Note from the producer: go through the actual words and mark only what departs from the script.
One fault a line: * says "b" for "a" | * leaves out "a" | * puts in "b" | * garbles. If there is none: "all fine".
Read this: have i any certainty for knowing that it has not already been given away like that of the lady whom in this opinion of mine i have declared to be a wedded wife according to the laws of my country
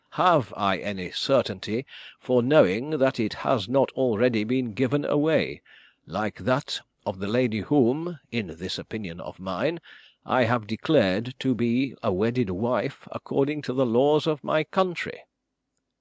all fine